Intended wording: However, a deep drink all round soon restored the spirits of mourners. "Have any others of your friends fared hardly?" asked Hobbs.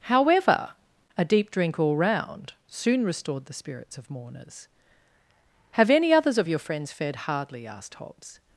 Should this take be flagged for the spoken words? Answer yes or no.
no